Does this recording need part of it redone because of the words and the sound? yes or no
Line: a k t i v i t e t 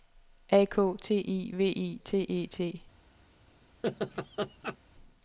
yes